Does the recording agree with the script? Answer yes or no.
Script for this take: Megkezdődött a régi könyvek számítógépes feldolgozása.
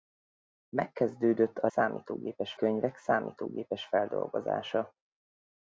no